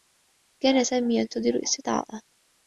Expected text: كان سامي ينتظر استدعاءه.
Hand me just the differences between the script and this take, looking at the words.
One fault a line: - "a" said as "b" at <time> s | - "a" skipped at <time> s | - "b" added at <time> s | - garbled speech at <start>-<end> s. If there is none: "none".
none